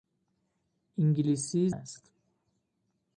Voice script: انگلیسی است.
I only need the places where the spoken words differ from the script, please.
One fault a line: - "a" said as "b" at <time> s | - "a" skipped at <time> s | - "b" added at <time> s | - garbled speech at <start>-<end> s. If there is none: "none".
none